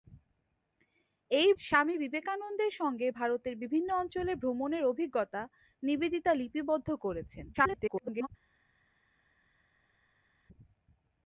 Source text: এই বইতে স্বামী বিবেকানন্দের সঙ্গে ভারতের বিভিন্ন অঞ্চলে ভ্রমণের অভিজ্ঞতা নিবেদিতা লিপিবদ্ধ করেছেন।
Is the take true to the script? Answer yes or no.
no